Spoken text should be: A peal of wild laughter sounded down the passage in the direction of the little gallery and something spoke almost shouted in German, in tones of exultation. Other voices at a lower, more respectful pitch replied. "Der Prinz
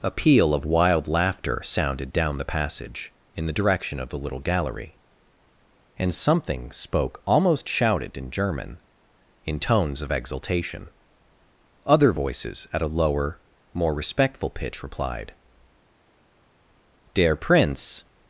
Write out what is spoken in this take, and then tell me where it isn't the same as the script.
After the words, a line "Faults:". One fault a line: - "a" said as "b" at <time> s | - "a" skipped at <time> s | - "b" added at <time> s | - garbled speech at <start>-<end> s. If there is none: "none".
A peal of wild laughter sounded down the passage in the direction of the little gallery and something spoke almost shouted in German, in tones of exultation. Other voices at a lower, more respectful pitch replied. "Der Prinz
Faults:
none